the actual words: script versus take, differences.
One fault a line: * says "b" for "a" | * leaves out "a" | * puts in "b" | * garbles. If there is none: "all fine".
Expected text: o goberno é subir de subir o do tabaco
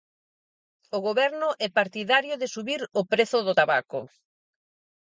* says "partidario" for "subir"
* puts in "prezo"